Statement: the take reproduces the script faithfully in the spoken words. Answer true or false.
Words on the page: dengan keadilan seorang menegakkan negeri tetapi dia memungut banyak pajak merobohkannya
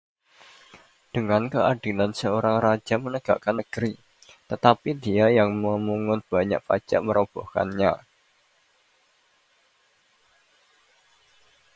false